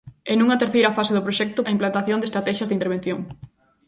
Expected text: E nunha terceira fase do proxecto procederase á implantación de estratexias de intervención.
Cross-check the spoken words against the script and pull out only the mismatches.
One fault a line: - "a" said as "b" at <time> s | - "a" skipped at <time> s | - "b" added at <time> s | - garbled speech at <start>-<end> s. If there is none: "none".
- "procederase" skipped at 1.7 s